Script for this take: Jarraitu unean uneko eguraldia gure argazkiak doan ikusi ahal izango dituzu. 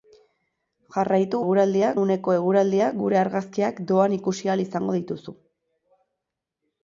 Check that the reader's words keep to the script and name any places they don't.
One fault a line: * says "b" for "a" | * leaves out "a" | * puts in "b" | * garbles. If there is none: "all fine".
* says "eguraldia" for "unean"